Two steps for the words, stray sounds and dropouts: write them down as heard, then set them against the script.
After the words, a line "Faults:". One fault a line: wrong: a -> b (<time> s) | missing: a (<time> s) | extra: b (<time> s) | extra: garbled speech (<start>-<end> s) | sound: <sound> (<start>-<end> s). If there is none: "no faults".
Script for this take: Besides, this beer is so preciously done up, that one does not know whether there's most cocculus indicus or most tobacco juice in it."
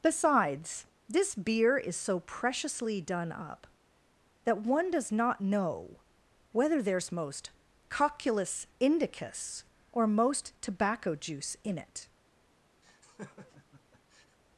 Besides, this beer is so preciously done up, that one does not know whether there's most cocculus indicus or most tobacco juice in it."
Faults:
sound: laugh (12.8-14.4 s)